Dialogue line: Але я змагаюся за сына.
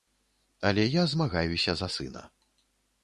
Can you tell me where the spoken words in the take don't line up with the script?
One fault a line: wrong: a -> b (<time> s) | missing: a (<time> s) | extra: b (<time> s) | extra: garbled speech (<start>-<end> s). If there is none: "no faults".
no faults